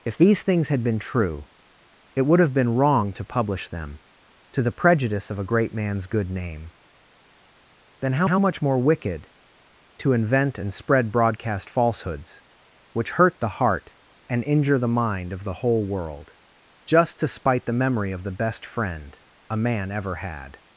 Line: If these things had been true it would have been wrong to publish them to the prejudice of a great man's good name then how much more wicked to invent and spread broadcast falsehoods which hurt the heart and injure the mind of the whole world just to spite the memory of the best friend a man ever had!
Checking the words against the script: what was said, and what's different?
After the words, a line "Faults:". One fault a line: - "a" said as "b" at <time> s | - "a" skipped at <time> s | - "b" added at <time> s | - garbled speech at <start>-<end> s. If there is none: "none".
If these things had been true it would have been wrong to publish them to the prejudice of a great man's good name then how how much more wicked to invent and spread broadcast falsehoods which hurt the heart and injure the mind of the whole world just to spite the memory of the best friend a man ever had!
Faults:
- "how" added at 8.2 s